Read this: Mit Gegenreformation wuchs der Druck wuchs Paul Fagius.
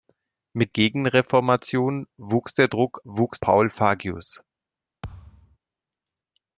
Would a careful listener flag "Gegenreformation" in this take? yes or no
no